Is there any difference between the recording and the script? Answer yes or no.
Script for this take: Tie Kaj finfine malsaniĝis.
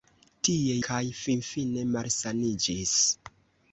no